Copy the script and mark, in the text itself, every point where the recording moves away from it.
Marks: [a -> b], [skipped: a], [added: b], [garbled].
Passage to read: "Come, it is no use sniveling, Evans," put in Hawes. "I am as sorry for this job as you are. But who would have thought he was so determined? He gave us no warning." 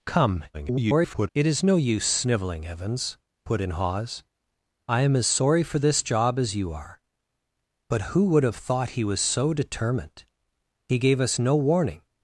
"Come, [garbled] it is no use sniveling, Evans," put in Hawes. "I am as sorry for this job as you are. But who would have thought he was so determined? He gave us no warning."